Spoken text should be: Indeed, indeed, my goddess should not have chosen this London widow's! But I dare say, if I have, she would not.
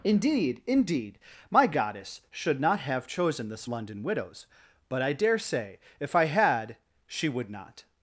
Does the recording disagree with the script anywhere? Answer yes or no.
yes